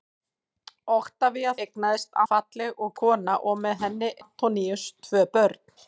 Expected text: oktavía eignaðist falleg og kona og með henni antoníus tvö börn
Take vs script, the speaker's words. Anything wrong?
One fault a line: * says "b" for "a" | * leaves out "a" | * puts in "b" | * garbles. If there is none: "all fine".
all fine